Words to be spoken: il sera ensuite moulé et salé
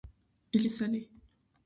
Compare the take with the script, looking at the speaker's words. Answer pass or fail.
fail